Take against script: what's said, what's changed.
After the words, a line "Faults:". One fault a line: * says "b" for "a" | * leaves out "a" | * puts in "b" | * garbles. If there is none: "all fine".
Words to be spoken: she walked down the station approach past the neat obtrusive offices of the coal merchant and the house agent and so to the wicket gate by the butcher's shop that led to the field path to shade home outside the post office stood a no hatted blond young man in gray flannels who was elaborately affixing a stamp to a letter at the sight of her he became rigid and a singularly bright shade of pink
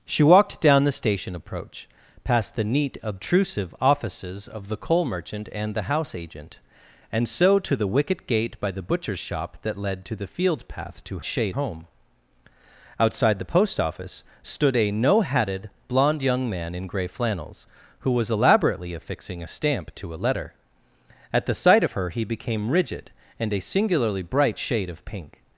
she walked down the station approach past the neat obtrusive offices of the coal merchant and the house agent and so to the wicket gate by the butcher's shop that led to the field path to shade home outside the post office stood a no hatted blond young man in gray flannels who was elaborately affixing a stamp to a letter at the sight of her he became rigid and a singularly bright shade of pink
Faults:
all fine